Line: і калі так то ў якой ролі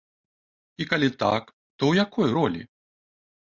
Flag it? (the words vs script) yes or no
no